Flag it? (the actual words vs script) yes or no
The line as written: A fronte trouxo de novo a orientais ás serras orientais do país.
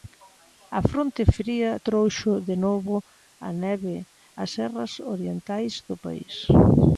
yes